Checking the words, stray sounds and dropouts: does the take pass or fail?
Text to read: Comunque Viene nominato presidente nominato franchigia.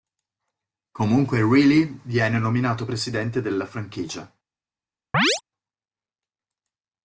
fail